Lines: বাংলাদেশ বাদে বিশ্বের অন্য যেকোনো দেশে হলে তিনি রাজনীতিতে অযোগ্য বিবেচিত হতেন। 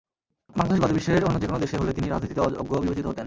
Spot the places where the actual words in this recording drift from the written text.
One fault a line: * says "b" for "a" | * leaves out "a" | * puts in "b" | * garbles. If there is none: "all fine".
all fine